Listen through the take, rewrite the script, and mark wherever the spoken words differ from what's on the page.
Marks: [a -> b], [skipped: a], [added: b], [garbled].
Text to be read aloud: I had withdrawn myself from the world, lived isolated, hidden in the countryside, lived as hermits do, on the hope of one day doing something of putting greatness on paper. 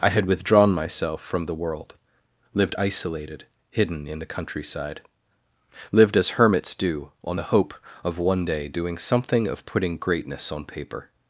I had withdrawn myself from the world, lived isolated, hidden in the countryside, lived as hermits do, on the hope of one day doing something of putting greatness on paper.